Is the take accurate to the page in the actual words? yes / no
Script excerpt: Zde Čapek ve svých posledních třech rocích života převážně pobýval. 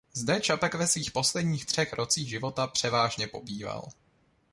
yes